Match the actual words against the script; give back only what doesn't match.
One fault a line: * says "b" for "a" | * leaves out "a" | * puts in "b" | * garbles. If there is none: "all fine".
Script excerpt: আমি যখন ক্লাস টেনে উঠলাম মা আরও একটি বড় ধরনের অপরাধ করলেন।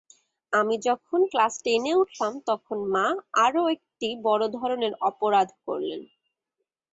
* puts in "তখন"